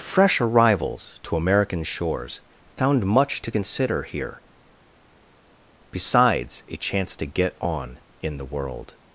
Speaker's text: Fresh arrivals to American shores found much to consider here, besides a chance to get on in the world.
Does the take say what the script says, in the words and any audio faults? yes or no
yes